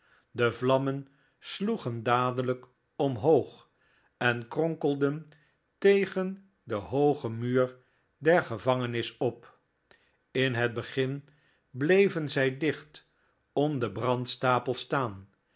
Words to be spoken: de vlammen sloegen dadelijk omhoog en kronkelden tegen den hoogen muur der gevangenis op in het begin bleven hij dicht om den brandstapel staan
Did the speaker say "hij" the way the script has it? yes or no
no